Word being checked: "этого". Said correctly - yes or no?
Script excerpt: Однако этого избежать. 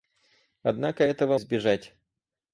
yes